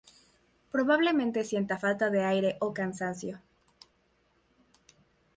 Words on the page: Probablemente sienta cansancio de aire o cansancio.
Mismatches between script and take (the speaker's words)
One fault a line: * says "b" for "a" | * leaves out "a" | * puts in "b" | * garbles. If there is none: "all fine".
* says "falta" for "cansancio"